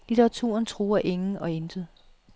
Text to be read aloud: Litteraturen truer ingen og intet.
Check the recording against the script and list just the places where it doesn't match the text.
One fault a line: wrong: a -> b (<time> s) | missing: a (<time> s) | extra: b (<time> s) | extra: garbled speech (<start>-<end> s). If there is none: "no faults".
no faults